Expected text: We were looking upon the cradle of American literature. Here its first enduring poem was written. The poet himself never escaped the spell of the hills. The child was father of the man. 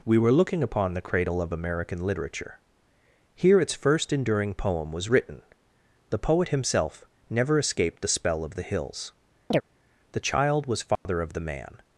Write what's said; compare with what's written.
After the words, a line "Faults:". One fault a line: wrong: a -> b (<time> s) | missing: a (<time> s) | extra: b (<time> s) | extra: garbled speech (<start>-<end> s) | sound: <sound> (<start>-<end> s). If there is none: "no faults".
We were looking upon the cradle of American literature. Here its first enduring poem was written. The poet himself never escaped the spell of the hills. The child was father of the man.
Faults:
sound: chirp (9.5-9.6 s)
sound: dropout (11.0-11.1 s)